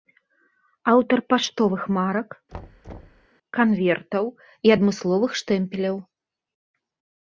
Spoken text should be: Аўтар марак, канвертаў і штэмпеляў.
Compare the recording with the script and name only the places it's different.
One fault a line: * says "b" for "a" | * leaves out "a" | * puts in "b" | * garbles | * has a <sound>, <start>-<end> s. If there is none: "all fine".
* puts in "паштовых"
* has a thud, 2.5-3.3 s
* puts in "адмысловых"